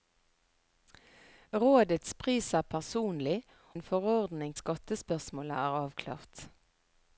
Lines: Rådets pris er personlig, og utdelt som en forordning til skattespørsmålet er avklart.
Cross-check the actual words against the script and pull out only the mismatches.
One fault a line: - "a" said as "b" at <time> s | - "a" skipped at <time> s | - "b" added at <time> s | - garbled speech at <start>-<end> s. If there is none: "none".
- "og utdelt som" skipped at 3.4 s
- "til" skipped at 4.5 s